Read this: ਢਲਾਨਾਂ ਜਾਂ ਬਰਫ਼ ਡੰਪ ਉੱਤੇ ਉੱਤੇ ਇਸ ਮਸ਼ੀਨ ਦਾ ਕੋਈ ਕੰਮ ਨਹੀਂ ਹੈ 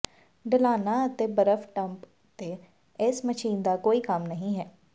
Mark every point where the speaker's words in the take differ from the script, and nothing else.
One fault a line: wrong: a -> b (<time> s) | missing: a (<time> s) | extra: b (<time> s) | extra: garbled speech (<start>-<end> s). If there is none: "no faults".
wrong: ਜਾਂ -> ਅਤੇ (1.1 s)
missing: ਉੱਤੇ (2.6 s)